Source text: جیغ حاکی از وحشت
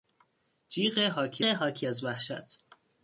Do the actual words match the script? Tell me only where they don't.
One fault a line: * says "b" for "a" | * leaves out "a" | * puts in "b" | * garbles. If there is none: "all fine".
* puts in "حاکی"